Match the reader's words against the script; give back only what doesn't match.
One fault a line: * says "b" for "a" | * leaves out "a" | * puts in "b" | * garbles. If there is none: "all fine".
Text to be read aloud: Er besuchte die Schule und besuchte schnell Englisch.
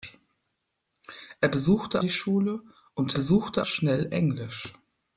all fine